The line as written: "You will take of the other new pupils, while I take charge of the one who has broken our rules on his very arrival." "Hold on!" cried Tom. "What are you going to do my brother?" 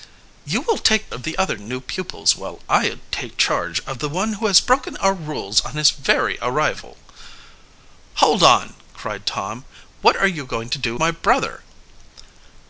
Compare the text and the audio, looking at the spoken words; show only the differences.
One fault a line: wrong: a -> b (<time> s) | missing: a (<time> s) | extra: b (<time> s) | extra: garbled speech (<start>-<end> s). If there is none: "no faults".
no faults